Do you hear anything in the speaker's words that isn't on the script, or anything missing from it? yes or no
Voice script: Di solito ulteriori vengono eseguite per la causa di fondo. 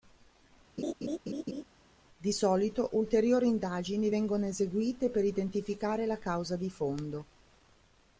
yes